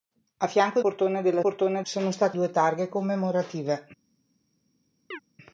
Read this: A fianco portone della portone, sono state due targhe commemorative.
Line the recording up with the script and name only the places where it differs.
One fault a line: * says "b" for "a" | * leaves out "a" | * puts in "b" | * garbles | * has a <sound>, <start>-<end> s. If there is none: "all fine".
* has a chirp, 5.1-5.2 s